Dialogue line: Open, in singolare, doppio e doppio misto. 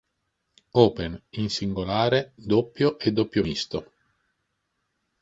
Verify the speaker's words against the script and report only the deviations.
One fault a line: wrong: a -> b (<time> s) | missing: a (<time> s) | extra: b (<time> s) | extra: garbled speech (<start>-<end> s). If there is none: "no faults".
no faults